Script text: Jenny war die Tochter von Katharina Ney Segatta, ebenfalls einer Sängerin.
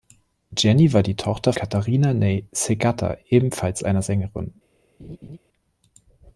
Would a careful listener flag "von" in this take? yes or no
yes